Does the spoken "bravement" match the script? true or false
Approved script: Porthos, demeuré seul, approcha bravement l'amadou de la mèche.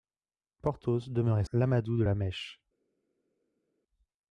false